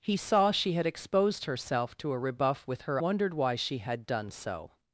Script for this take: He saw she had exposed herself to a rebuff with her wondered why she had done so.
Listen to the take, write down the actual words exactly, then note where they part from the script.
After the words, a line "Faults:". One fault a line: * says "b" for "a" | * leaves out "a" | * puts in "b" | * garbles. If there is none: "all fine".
He saw she had exposed herself to a rebuff with her wondered why she had done so.
Faults:
all fine